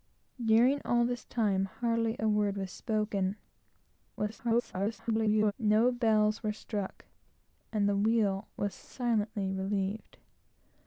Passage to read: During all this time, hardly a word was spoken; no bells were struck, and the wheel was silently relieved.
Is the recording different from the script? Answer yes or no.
yes